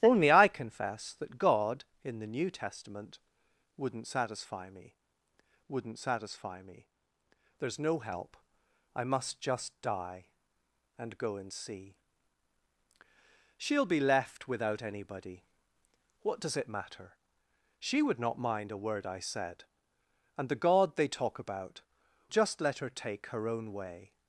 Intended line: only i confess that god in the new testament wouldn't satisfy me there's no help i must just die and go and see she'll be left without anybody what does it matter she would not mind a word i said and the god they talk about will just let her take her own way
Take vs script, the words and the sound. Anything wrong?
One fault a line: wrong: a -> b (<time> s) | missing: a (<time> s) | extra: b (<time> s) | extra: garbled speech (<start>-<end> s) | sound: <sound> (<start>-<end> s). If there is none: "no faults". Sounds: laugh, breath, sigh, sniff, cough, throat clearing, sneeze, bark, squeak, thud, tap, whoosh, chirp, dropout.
extra: wouldn't satisfy me (5.7 s)
missing: will (21.8 s)